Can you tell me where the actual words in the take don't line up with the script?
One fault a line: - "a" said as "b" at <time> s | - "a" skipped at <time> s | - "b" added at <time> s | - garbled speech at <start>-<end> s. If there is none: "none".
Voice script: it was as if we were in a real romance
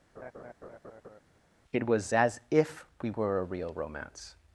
- "in" skipped at 3.4 s